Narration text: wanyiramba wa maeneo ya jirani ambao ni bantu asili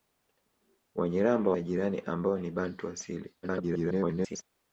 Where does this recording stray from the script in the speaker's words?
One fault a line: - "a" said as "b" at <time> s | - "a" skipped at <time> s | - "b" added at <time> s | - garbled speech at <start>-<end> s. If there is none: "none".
- "wa maeneo" skipped at 1.5 s
- garbled speech at 3.4-4.4 s